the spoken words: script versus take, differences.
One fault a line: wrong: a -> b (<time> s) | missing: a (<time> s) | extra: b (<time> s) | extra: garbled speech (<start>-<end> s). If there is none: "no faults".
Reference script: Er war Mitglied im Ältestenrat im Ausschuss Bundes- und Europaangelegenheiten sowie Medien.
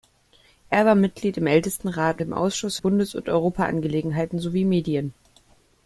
no faults